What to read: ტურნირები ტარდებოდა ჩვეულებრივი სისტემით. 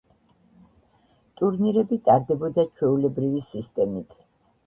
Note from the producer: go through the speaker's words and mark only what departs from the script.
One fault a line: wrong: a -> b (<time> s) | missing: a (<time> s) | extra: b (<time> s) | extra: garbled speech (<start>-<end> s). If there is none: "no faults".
no faults